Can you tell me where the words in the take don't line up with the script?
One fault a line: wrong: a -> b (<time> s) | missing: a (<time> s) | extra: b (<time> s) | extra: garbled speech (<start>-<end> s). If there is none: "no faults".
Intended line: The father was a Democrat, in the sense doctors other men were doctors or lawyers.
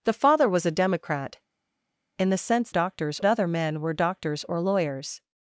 no faults